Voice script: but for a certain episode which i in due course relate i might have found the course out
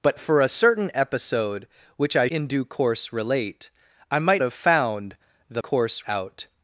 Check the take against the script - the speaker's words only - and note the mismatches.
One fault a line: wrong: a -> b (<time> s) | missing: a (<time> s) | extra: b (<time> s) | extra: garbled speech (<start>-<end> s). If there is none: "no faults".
no faults